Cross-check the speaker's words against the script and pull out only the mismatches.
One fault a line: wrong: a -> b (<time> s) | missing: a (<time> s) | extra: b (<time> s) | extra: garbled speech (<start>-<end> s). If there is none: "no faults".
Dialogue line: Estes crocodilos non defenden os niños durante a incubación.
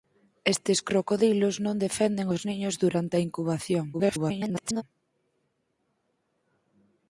extra: garbled speech (3.9-4.8 s)